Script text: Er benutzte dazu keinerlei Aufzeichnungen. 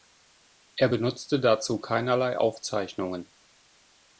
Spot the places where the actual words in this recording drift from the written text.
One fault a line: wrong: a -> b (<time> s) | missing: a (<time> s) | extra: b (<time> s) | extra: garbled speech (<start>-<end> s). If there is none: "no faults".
no faults